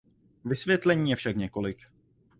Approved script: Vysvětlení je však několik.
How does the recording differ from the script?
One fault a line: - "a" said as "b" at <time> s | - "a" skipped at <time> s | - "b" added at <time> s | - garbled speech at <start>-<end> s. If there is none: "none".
none